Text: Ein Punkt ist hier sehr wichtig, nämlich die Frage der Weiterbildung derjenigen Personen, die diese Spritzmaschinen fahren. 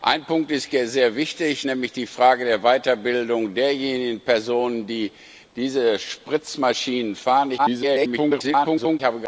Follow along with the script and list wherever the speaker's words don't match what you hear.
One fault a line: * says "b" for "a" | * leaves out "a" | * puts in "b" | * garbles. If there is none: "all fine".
* garbles